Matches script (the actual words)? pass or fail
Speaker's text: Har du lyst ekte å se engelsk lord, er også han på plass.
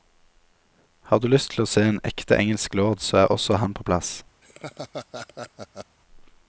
fail